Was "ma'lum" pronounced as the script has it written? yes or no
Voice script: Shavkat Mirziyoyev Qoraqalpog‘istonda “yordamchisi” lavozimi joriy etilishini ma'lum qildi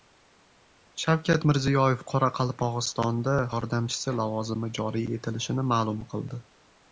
yes